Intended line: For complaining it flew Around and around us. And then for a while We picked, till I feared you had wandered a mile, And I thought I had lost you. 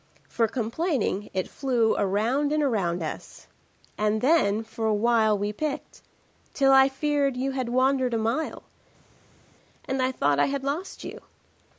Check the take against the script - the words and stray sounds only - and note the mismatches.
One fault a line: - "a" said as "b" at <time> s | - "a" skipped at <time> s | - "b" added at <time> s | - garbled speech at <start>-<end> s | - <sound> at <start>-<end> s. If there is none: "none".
none